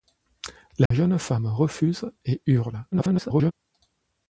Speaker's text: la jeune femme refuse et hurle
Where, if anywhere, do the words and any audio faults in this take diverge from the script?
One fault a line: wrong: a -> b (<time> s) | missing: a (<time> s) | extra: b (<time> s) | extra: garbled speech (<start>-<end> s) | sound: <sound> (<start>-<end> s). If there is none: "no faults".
sound: dropout (0.9-0.9 s)
extra: garbled speech (2.9-3.5 s)